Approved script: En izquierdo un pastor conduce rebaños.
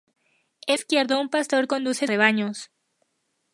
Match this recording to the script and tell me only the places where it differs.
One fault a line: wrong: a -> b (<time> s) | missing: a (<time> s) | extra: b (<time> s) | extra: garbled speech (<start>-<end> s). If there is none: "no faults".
no faults